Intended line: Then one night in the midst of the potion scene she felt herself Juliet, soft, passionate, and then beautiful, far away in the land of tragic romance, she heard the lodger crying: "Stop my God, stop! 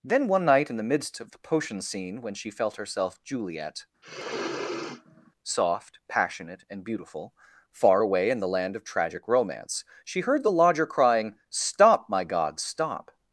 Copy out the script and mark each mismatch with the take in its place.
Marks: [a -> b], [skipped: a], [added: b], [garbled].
Then one night in the midst of the potion scene [added: when] she felt herself Juliet, soft, passionate, and [skipped: then] beautiful, far away in the land of tragic romance, she heard the lodger crying: "Stop my God, stop!